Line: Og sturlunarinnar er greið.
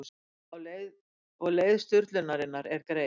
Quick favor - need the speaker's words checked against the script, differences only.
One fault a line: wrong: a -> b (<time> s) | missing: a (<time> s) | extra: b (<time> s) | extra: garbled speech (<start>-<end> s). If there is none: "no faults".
extra: leið (1.6 s)